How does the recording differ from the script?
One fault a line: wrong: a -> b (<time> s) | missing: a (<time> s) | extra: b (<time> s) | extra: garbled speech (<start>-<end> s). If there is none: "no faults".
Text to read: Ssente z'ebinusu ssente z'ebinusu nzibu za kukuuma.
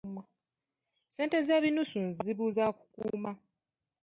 missing: ssente z'ebinusu (2.0 s)